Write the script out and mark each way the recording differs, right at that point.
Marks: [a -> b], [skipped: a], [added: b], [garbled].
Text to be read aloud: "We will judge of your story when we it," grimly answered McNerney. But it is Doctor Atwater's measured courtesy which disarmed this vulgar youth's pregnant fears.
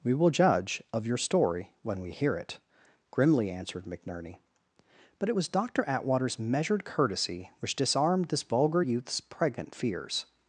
"We will judge of your story when we [added: hear] it," grimly answered McNerney. But it [is -> was] Doctor Atwater's measured courtesy which disarmed this vulgar youth's pregnant fears.